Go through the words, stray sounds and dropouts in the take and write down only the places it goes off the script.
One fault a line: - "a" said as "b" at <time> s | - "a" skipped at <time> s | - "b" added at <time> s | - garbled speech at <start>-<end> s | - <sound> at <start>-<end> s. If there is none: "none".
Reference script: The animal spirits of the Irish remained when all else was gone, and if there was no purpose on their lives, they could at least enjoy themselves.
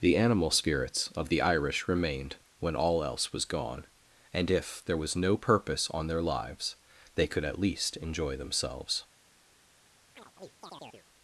- chirp at 10.2-11.1 s